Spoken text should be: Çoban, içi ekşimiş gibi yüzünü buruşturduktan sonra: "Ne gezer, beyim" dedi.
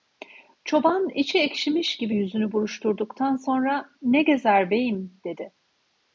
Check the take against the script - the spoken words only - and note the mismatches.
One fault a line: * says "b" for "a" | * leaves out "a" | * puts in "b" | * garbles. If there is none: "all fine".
all fine